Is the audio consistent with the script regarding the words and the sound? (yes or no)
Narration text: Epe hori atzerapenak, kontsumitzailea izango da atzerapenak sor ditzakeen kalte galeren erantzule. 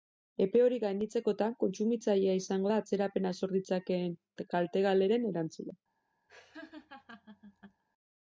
no